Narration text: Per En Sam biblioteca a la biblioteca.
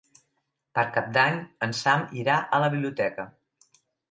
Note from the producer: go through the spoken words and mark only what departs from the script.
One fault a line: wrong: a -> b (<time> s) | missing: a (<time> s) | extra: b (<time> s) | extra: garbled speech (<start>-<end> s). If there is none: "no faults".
extra: Cap d'Any (0.9 s)
wrong: biblioteca -> irà (2.2 s)